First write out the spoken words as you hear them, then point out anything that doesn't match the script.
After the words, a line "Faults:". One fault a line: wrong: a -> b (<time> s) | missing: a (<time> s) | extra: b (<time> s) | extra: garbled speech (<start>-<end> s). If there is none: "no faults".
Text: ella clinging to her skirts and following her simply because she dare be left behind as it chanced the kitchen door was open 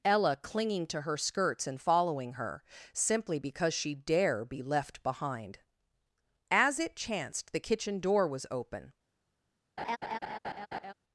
ella clinging to her skirts and following her simply because she dare be left behind as it chanced the kitchen door was open
Faults:
no faults